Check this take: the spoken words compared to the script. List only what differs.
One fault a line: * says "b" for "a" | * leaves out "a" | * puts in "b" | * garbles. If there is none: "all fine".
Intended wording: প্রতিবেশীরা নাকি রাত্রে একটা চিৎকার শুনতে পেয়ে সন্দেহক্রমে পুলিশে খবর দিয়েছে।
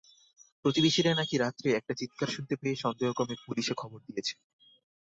all fine